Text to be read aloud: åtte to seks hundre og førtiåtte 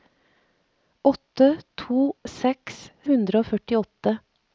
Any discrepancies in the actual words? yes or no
no